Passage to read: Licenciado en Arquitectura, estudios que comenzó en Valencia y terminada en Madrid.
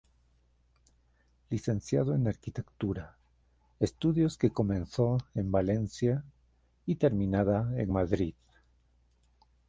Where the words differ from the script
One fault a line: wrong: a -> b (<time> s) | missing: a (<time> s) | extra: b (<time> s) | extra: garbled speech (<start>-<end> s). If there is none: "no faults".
no faults